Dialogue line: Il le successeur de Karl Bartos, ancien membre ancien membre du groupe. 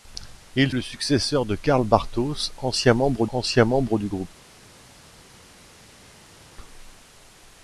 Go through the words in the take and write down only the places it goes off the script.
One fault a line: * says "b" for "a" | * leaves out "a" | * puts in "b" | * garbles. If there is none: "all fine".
all fine